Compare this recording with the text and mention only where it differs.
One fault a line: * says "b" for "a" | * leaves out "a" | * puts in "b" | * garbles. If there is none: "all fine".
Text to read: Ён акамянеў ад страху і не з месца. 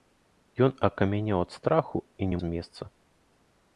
all fine